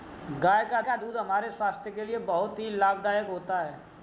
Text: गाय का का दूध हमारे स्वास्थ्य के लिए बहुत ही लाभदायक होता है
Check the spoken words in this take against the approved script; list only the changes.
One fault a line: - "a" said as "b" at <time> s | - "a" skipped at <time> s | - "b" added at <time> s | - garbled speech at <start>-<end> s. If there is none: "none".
none